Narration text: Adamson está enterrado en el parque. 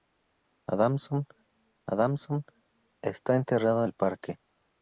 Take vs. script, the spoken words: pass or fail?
fail